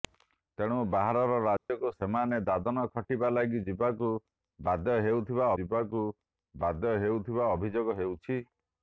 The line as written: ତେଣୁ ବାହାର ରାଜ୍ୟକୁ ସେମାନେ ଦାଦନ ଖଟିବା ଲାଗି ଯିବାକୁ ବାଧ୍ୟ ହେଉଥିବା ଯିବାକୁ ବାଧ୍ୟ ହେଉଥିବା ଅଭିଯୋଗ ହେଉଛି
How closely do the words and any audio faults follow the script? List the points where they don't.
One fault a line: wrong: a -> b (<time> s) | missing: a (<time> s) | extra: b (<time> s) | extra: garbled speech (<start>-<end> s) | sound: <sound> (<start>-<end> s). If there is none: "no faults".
sound: dropout (1.6-1.7 s)